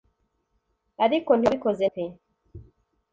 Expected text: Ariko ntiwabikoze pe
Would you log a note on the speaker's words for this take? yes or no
no